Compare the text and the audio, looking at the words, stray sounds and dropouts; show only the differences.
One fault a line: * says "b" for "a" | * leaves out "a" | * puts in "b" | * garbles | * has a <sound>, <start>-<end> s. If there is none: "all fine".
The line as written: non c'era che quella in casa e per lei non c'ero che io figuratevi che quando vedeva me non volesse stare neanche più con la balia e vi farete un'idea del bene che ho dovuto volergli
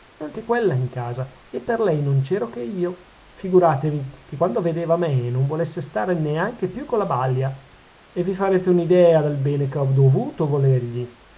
* leaves out "c'era"